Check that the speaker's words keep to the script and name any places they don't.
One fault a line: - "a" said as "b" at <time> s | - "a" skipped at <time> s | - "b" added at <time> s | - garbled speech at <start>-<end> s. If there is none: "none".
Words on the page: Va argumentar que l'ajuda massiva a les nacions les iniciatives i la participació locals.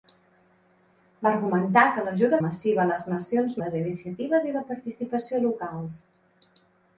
none